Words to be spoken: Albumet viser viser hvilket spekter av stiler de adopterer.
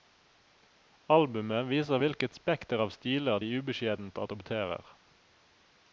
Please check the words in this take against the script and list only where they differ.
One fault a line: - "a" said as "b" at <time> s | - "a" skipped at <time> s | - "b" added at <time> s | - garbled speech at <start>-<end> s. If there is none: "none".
- "viser" skipped at 2.0 s
- "ubeskjedent" added at 3.6 s